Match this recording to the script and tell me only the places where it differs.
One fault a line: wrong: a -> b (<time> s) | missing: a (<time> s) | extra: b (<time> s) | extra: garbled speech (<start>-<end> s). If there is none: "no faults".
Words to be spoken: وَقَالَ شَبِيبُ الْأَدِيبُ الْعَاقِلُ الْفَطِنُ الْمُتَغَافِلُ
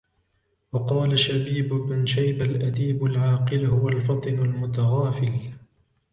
extra: بْنُ شَيْبَةَ (1.7 s)
extra: هُوَ (3.7 s)